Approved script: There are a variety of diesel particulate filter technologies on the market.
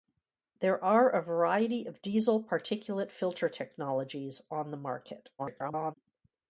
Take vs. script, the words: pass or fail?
fail